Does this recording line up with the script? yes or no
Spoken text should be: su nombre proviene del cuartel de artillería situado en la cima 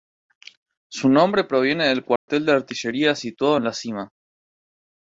yes